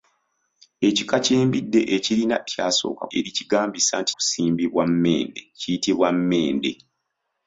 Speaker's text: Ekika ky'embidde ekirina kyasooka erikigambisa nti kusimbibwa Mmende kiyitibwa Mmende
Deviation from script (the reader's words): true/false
false